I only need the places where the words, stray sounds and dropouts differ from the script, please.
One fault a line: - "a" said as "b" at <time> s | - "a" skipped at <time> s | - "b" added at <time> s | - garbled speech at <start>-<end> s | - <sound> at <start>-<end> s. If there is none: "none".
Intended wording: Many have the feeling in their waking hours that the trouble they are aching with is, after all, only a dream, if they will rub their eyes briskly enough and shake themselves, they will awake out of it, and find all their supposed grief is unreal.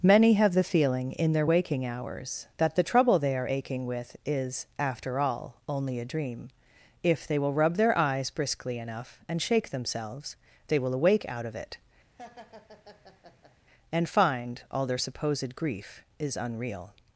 - laugh at 12.2-13.6 s